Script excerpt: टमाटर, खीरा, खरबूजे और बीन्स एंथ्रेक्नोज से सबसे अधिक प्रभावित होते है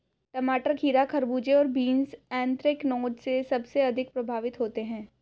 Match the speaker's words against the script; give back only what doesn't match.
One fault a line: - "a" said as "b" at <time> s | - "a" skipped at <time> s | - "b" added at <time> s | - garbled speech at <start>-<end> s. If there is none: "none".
none